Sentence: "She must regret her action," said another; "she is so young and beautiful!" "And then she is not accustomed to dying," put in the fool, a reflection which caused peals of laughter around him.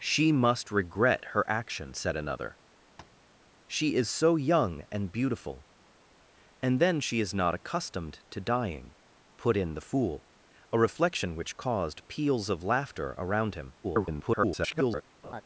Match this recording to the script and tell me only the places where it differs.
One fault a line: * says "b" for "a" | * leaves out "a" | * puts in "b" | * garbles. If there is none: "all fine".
* garbles